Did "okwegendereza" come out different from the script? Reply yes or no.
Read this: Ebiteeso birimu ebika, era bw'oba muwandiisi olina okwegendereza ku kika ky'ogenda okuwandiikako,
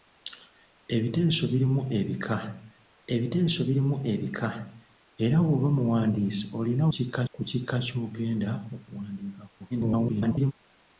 yes